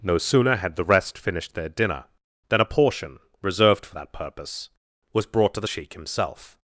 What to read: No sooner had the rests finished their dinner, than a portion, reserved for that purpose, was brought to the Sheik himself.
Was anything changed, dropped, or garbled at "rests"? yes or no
yes